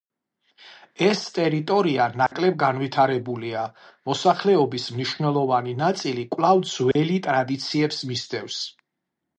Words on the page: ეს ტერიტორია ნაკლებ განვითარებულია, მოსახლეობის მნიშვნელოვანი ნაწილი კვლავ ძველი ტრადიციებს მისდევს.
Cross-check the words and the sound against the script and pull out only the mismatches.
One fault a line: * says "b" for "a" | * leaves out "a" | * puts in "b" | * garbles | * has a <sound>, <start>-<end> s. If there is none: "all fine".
* has a dropout, 2.3-2.3 s
* has a dropout, 6.9-7.0 s